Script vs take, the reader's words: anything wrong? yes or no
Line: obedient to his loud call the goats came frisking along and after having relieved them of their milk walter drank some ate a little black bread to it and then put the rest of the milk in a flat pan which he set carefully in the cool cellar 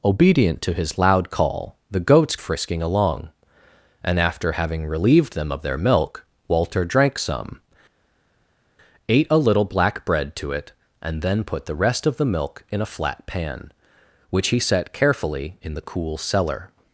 yes